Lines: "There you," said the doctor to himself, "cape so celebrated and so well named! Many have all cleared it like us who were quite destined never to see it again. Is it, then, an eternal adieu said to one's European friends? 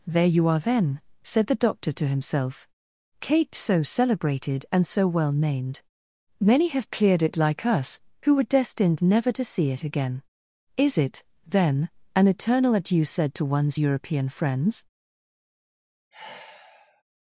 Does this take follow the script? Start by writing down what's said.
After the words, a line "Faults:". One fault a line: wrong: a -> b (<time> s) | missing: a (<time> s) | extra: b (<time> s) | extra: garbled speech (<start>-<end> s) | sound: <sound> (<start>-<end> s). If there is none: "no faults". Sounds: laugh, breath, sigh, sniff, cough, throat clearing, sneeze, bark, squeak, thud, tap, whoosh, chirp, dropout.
"There you are, then," said the doctor to himself, "cape so celebrated and so well named! Many have cleared it like us who were destined never to see it again. Is it, then, an eternal adieu said to one's European friends?
Faults:
extra: are then (0.5 s)
missing: all (6.9 s)
missing: quite (8.4 s)
sound: sigh (16.1-17.0 s)